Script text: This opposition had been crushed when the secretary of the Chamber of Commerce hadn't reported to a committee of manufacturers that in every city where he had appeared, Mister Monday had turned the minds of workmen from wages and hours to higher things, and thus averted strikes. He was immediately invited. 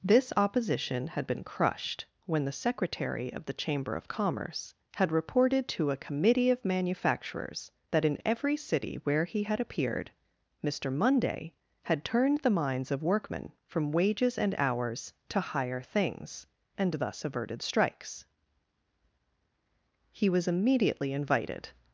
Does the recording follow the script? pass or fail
fail